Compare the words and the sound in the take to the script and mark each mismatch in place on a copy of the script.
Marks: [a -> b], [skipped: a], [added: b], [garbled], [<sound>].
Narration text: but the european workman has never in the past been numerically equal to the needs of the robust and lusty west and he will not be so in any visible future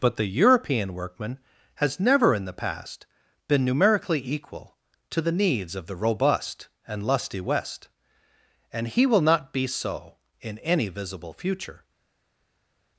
but the european workman has never in the past been numerically equal to the needs of the robust and lusty west and he will not be so in any visible future